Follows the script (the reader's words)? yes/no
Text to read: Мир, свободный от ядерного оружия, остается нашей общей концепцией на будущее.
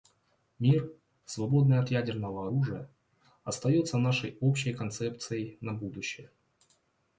yes